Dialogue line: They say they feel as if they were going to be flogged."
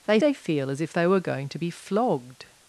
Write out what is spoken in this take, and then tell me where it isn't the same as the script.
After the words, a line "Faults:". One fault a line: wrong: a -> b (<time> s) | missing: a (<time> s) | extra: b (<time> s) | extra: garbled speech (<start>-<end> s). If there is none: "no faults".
They they feel as if they were going to be flogged."
Faults:
missing: say (0.2 s)